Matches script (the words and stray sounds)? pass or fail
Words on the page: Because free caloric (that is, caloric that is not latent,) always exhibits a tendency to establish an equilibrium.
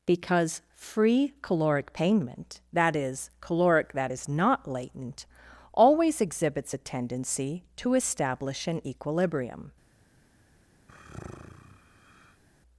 fail